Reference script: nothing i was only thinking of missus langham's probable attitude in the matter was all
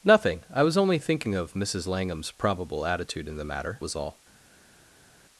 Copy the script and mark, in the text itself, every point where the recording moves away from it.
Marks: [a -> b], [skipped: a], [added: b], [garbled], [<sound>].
nothing i was only thinking of missus langham's probable attitude in the matter was all